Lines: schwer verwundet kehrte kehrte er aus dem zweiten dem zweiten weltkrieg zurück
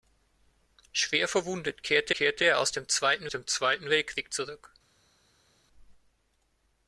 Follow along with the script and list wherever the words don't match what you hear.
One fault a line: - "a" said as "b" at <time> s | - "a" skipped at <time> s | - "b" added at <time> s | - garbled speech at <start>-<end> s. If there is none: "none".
none